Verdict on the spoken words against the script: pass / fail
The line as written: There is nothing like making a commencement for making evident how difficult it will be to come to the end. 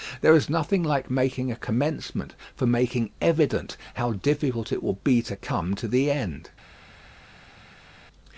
pass